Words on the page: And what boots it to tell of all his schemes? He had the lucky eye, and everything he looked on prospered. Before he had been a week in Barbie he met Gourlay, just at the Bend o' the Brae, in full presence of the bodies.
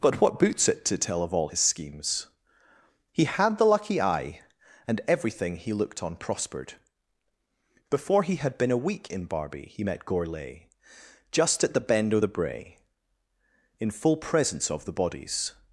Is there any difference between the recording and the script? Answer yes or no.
yes